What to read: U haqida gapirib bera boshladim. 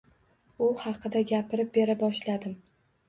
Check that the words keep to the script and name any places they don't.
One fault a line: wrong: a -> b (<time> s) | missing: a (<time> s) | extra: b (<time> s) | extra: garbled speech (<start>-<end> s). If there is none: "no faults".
no faults